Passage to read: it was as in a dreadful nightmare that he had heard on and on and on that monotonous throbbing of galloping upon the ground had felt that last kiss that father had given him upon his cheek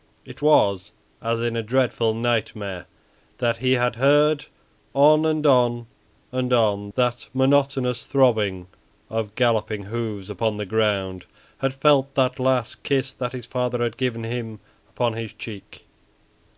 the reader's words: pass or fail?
fail